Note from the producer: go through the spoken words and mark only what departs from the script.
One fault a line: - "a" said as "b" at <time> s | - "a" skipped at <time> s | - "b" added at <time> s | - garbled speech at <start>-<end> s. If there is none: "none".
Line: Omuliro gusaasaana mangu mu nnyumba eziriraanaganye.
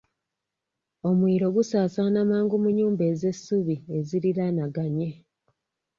- "ez'essubi" added at 3.1 s